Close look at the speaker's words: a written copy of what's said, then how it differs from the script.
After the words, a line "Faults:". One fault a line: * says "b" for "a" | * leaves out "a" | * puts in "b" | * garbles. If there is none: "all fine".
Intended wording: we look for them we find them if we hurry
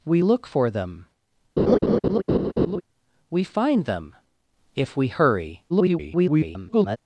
we look for them we find them if we hurry [garbled]
Faults:
* garbles